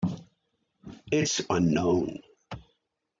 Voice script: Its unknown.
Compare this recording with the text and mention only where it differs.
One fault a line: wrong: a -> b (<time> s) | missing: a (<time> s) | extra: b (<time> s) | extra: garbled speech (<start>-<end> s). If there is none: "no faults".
no faults